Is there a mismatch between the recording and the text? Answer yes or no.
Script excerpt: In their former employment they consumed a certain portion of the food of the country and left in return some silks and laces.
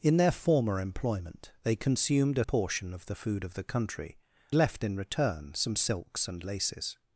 yes